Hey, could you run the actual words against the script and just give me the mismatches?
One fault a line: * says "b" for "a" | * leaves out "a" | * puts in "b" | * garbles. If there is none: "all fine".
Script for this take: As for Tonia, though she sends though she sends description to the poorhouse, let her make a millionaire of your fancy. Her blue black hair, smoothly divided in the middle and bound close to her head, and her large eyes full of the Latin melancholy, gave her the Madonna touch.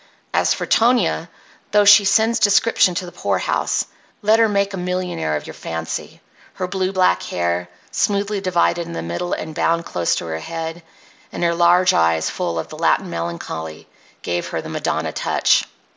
* leaves out "though she sends"